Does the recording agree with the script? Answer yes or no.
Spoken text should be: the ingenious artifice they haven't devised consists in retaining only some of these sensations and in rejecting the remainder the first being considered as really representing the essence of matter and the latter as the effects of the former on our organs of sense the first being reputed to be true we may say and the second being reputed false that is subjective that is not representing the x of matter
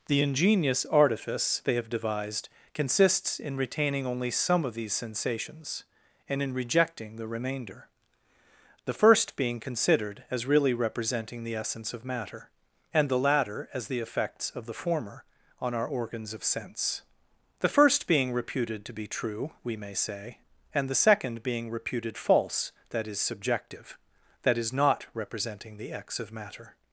no